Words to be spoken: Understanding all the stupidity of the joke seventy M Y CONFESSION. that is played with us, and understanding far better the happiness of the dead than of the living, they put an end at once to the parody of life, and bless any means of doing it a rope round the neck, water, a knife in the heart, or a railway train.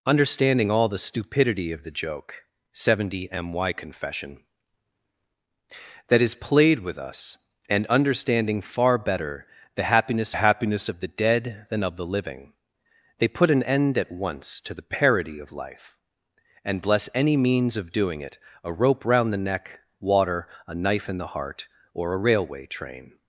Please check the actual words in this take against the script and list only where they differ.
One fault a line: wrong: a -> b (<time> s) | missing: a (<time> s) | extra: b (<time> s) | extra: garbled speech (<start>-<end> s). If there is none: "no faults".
extra: happiness (10.3 s)